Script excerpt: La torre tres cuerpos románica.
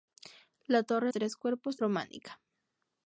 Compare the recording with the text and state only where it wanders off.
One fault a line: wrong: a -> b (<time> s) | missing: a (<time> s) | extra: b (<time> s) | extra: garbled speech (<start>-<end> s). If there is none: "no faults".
no faults